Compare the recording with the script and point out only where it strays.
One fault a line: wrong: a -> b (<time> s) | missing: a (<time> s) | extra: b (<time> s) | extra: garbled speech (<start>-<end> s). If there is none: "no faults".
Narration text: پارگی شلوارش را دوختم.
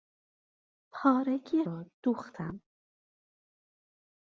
missing: شلوارش (1.7 s)